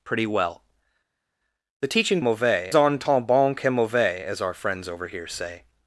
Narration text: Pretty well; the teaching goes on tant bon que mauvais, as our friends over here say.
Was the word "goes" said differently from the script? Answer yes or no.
yes